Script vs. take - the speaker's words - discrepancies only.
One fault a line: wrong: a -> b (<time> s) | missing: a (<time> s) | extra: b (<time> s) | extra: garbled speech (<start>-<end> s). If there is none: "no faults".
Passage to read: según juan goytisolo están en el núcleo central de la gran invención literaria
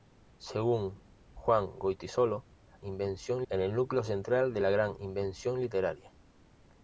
wrong: están -> invención (2.8 s)